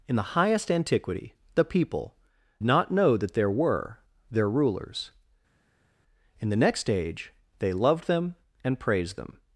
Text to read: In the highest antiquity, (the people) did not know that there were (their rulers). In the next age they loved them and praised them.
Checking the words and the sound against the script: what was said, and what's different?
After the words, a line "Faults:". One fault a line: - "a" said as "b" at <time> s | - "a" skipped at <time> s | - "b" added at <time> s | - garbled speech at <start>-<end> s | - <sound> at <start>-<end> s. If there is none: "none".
In the highest antiquity, (the people) not know that there were (their rulers). In the next age they loved them and praised them.
Faults:
- "did" skipped at 2.1 s